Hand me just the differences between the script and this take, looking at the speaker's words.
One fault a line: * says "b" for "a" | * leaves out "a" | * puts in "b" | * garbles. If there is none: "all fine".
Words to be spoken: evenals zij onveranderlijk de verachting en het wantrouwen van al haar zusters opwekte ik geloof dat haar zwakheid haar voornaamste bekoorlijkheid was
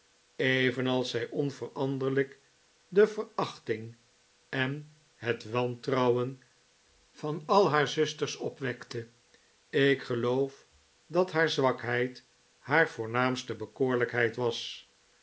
all fine